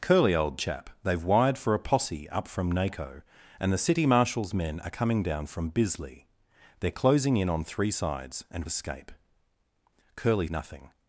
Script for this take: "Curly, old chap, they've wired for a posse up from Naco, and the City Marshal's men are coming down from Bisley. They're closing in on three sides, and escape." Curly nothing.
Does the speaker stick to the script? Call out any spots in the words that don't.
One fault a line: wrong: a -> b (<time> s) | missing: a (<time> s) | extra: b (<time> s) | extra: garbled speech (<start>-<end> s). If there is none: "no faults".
no faults